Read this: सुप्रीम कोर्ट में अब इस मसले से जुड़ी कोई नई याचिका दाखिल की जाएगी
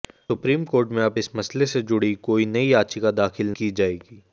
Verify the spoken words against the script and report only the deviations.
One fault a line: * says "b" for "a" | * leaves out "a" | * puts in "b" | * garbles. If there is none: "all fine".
all fine